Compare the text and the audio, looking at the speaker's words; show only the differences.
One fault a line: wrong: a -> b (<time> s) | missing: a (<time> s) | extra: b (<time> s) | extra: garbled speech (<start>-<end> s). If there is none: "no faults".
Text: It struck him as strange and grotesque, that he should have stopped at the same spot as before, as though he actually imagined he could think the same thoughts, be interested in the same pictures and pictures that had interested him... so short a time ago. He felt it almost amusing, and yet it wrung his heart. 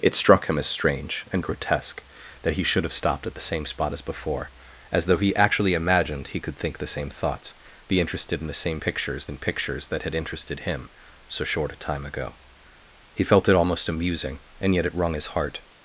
no faults